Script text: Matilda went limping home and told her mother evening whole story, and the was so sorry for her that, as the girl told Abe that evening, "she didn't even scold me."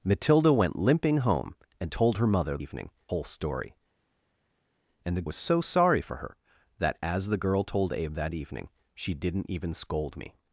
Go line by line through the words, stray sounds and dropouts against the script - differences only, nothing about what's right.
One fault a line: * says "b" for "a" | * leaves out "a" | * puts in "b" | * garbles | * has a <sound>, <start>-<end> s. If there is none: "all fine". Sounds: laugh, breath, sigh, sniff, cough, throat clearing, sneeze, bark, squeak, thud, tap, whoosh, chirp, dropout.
all fine